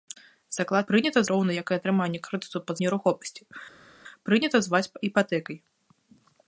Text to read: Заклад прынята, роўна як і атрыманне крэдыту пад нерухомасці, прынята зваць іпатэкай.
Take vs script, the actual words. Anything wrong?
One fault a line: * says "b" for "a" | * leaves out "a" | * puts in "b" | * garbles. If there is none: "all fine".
all fine